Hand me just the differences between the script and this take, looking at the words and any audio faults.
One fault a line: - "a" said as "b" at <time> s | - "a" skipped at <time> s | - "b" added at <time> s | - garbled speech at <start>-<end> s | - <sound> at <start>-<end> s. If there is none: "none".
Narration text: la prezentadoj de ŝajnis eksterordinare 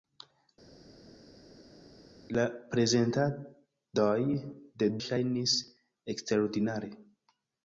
none